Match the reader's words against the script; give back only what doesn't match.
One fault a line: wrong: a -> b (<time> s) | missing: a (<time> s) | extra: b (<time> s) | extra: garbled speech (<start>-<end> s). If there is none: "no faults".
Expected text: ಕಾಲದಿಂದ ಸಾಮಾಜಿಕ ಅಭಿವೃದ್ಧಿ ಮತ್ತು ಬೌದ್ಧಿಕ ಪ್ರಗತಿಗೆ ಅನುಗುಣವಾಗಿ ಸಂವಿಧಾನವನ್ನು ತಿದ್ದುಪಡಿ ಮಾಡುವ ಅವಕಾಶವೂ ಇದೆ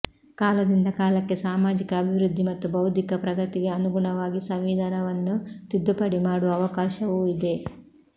extra: ಕಾಲಕ್ಕೆ (0.9 s)